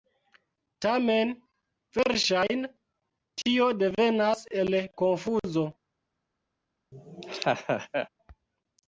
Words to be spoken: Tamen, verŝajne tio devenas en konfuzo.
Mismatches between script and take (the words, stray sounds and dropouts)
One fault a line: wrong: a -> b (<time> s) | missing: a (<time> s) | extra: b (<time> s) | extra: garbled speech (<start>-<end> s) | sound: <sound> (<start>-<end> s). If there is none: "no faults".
wrong: en -> el (4.7 s)
sound: laugh (6.9-8.1 s)